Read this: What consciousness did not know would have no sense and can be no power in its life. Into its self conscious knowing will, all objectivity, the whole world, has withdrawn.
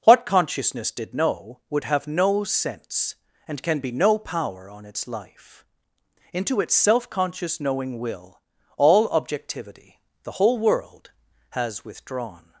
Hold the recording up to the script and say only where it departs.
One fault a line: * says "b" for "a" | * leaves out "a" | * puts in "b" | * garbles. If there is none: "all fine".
* leaves out "not"
* says "on" for "in"